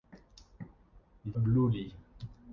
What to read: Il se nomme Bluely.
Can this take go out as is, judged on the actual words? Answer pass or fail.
fail